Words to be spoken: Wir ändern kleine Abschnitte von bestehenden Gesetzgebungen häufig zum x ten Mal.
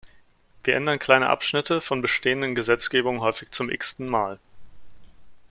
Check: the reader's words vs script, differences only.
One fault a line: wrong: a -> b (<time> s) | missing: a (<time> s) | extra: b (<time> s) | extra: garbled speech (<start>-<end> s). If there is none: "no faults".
no faults